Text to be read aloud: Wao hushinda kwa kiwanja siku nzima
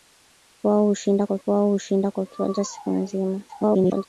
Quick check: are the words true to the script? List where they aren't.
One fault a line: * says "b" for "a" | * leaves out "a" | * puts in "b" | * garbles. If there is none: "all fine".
* puts in "wao hushinda kwa"
* garbles